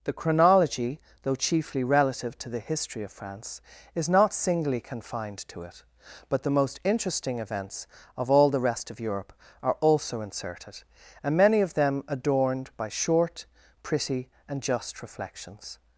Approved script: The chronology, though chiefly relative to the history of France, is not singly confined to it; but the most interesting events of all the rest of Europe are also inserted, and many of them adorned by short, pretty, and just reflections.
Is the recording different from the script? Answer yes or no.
no